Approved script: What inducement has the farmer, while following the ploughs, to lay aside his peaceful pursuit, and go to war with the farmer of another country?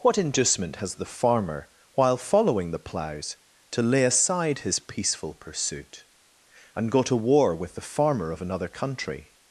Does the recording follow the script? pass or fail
pass